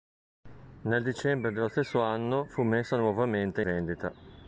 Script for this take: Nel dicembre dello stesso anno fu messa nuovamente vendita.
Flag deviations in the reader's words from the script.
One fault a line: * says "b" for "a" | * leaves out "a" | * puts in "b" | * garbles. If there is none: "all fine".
all fine